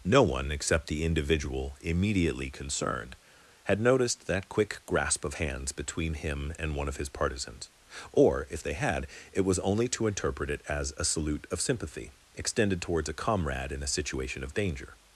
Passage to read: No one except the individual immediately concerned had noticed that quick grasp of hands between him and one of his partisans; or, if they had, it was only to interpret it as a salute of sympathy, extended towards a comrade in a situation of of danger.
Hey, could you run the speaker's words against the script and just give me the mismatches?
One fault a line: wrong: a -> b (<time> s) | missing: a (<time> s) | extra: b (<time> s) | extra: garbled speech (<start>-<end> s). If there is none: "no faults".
missing: of (14.6 s)